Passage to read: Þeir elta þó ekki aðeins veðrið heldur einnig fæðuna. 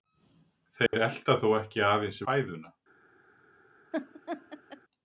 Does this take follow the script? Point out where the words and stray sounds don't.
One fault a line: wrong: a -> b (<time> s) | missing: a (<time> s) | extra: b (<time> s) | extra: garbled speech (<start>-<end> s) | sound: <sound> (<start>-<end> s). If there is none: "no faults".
sound: dropout (0.9-0.9 s)
missing: veðrið heldur einnig (2.2 s)
sound: laugh (3.9-4.8 s)